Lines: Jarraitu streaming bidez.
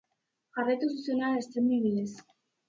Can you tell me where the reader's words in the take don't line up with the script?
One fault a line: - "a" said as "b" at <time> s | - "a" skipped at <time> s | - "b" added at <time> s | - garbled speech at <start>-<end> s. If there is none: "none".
- "zuzenean" added at 0.9 s